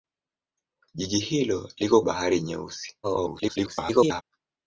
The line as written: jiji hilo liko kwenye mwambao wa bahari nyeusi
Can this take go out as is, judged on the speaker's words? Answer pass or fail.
fail